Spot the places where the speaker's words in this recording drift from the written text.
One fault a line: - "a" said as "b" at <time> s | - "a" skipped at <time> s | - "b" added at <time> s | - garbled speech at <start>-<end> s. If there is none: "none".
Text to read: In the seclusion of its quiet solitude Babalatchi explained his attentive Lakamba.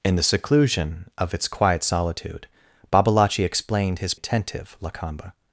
none